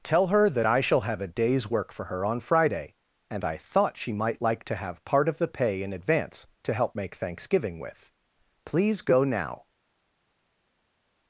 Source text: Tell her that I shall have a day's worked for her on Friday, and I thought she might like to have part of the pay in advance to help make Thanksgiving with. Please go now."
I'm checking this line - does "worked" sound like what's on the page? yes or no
no